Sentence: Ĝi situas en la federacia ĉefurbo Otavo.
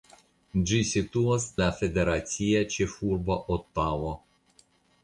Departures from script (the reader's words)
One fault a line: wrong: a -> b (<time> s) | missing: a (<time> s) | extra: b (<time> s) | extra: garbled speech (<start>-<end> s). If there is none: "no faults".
missing: en (1.4 s)